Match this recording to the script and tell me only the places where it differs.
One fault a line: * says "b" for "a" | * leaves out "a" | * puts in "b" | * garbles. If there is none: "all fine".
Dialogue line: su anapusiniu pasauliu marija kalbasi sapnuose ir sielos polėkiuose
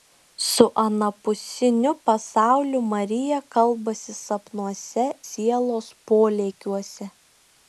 * leaves out "ir"